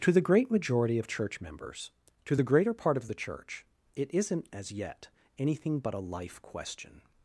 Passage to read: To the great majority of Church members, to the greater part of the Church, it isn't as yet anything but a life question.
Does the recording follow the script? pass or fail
pass